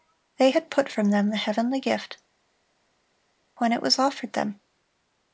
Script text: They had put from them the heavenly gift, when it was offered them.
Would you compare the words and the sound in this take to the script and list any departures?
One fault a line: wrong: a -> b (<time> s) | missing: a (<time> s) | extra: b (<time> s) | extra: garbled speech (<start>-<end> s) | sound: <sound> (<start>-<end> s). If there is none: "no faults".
no faults